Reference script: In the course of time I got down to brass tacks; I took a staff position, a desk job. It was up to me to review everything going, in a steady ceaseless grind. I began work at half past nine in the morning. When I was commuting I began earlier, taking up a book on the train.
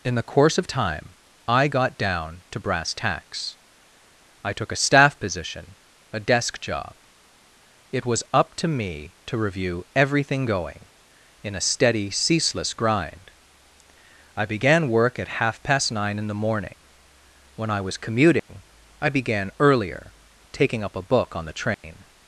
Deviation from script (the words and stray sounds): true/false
true